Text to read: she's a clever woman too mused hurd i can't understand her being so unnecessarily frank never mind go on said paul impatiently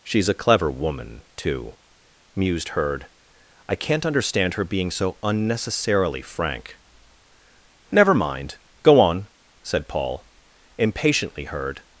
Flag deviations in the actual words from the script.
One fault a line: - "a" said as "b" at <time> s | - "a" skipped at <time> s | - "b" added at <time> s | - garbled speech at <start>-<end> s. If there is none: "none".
- "hurd" added at 11.4 s